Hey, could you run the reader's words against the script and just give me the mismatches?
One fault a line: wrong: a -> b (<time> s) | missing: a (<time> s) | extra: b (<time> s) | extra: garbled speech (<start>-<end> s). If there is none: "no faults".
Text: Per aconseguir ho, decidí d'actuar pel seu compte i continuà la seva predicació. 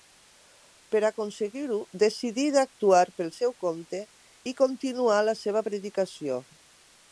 no faults